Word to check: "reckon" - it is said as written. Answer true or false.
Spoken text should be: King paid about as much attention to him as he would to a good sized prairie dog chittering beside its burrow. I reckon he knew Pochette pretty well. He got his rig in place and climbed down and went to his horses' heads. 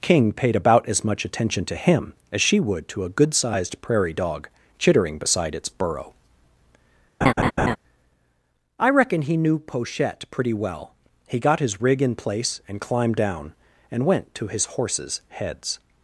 true